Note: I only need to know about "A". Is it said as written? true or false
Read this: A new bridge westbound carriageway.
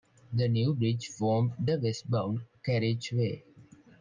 false